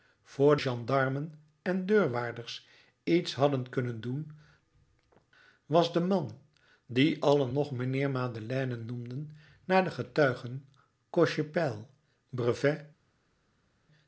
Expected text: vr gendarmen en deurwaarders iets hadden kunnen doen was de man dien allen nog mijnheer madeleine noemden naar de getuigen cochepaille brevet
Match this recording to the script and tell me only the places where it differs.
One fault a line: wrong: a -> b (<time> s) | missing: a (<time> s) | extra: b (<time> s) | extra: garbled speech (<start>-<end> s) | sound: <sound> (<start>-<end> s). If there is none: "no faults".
no faults